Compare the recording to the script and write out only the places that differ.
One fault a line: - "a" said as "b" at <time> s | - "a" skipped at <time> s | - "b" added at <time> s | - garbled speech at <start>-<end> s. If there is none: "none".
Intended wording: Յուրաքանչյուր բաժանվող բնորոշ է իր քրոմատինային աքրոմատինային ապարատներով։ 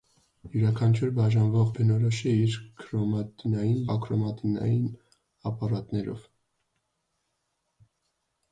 none